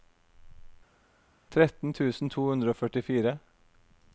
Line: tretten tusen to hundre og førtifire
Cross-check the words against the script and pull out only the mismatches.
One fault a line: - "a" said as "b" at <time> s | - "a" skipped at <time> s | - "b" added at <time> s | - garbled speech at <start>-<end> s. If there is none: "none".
none